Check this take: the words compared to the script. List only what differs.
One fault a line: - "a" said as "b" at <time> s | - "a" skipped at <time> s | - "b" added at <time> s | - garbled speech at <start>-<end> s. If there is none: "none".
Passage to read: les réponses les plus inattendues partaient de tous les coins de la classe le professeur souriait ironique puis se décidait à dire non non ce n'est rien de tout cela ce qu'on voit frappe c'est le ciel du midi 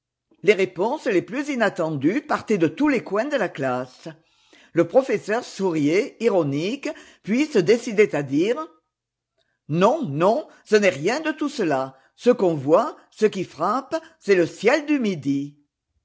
- "ce qui" added at 13.1 s